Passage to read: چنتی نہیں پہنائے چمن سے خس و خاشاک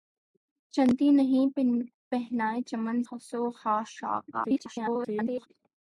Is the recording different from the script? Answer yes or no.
yes